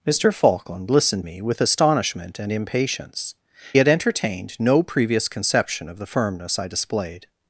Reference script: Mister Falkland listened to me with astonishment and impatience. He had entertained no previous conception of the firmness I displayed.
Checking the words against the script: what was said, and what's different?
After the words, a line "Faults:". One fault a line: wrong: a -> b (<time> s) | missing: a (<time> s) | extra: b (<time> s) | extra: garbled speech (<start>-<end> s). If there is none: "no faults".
Mister Falkland listened me with astonishment and impatience. Had entertained no previous conception of the firmness I displayed.
Faults:
missing: to (1.2 s)
missing: He (3.3 s)